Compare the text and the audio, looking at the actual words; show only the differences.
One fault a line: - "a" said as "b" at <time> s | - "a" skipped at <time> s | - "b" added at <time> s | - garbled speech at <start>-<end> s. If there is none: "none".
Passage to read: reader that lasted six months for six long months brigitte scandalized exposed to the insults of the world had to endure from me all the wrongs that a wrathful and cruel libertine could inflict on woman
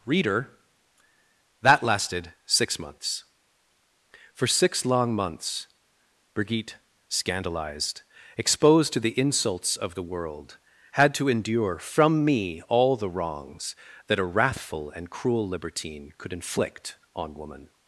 none